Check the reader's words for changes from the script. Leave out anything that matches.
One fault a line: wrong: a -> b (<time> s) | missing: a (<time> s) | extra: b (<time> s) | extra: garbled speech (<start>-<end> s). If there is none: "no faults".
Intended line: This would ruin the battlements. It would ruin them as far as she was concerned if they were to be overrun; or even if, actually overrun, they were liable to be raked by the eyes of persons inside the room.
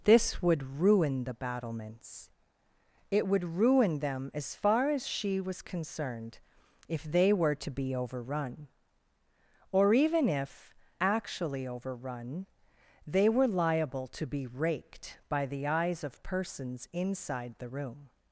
no faults